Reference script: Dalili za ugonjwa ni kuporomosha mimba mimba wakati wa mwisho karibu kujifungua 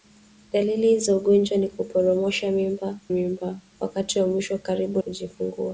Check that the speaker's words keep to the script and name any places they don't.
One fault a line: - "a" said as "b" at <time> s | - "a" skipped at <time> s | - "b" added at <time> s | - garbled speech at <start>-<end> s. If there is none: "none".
none